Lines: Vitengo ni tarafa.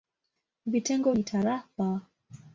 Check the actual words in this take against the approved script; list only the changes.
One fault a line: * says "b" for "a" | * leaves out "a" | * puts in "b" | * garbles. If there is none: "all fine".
all fine